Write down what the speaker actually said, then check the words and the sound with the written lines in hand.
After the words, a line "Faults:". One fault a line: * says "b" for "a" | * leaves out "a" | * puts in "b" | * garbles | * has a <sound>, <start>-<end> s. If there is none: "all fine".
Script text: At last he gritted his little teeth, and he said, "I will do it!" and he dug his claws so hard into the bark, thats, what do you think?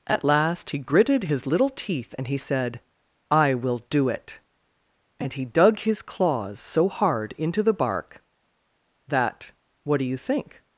At last he gritted his little teeth, and he said, "I will do it!" and he dug his claws so hard into the bark, that, what do you think?
Faults:
* says "that" for "thats"